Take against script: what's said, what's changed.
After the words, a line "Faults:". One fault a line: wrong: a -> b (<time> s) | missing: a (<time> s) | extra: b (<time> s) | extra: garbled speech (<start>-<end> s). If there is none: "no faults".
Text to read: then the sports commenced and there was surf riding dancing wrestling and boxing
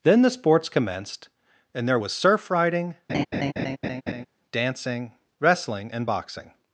then the sports commenced and there was surf riding dancing wrestling and boxing
Faults:
no faults